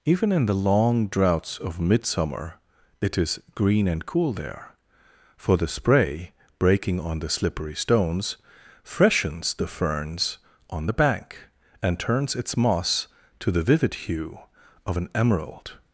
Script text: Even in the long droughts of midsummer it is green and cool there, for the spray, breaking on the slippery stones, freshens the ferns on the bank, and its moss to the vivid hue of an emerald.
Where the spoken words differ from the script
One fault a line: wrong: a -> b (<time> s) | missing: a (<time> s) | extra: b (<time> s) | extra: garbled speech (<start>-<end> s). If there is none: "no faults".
extra: turns (12.0 s)